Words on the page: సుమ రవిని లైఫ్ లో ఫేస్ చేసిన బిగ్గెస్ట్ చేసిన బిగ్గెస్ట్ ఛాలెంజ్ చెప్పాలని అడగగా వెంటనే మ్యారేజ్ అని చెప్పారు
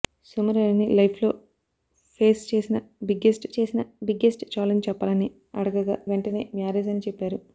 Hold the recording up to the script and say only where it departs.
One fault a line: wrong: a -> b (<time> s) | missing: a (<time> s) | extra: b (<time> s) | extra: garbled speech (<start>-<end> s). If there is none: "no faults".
no faults